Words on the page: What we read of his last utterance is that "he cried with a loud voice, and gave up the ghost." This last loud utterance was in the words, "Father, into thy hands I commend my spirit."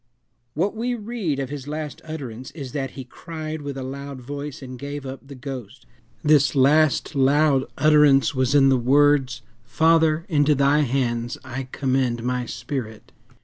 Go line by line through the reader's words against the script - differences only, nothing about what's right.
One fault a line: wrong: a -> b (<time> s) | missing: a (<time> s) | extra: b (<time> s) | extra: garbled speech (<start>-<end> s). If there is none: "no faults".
no faults